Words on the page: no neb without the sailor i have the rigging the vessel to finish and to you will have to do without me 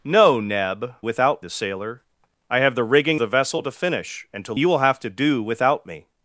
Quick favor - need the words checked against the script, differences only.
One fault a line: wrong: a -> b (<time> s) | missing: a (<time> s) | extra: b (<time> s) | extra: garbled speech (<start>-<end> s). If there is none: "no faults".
no faults